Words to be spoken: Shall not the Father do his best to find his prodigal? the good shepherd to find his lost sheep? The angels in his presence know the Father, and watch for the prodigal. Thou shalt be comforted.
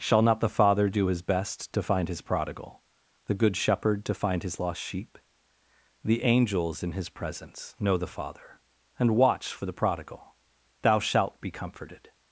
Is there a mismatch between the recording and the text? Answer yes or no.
no